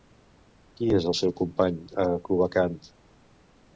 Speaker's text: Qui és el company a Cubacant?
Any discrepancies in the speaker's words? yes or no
yes